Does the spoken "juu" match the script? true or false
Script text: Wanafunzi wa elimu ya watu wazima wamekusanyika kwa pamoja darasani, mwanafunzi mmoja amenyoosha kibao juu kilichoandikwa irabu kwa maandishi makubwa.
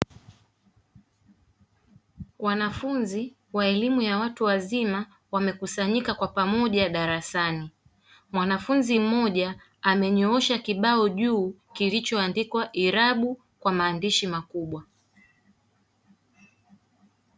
true